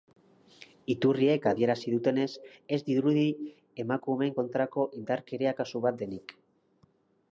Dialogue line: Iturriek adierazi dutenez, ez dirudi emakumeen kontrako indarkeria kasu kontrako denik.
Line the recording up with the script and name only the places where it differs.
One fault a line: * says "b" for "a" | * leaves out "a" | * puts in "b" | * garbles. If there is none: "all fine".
* says "bat" for "kontrako"